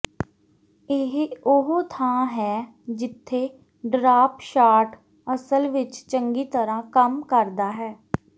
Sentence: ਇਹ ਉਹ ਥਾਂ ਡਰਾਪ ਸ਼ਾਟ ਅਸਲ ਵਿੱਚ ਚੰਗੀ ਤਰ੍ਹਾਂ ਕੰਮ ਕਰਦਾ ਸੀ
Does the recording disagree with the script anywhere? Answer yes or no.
yes